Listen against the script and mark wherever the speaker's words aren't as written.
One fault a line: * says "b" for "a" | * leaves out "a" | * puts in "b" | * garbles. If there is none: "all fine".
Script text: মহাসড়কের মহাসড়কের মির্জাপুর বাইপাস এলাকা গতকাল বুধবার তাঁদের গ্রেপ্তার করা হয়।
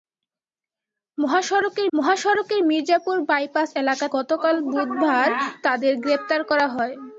all fine